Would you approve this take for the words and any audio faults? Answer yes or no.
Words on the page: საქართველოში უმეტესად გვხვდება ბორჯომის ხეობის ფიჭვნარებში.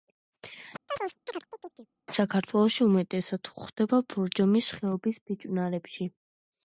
no